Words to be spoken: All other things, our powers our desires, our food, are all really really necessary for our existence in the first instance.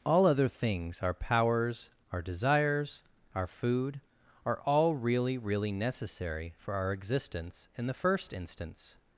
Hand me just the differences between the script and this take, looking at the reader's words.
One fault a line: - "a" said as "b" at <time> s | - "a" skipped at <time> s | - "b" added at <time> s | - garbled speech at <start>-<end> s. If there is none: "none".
none